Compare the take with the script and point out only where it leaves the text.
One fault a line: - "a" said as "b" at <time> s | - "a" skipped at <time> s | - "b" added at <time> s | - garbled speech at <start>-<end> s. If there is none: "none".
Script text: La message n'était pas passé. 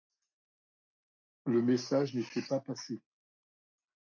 - "La" said as "Le" at 1.4 s